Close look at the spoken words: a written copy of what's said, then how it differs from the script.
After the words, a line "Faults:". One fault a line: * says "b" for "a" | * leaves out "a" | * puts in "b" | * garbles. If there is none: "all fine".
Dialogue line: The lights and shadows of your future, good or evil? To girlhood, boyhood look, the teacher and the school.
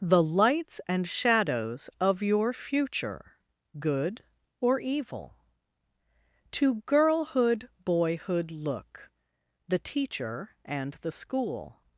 The lights and shadows of your future, good or evil? To girlhood, boyhood look, the teacher and the school.
Faults:
all fine